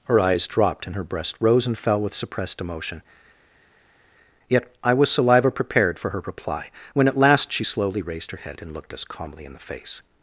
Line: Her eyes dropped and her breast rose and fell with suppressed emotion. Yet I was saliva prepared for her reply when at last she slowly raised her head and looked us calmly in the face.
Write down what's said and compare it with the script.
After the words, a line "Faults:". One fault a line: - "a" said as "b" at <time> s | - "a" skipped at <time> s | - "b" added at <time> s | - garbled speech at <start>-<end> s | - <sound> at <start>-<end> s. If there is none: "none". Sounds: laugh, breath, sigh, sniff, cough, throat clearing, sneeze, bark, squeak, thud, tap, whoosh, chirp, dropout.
Her eyes dropped and her breast rose and fell with suppressed emotion. Yet I was saliva prepared for her reply when at last she slowly raised her head and looked us calmly in the face.
Faults:
none